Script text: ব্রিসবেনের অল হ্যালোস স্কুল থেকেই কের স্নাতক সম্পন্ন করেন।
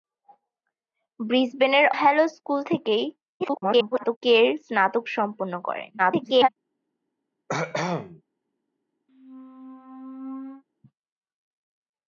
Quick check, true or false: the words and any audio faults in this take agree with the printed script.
false